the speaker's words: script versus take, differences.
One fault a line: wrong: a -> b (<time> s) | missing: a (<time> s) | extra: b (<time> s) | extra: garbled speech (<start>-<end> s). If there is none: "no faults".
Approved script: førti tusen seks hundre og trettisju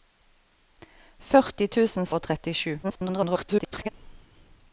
missing: seks hundre (2.1 s)
extra: garbled speech (2.8-3.9 s)